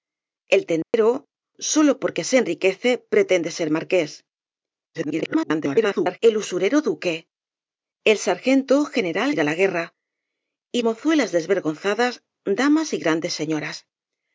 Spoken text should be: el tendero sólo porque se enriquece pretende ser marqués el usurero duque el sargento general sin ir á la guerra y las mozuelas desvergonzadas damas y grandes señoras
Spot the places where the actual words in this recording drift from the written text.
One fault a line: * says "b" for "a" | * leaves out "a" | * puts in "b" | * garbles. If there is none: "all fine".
* garbles
* leaves out "sin"
* leaves out "las"